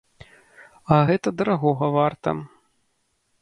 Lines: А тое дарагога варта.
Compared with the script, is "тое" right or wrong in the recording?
wrong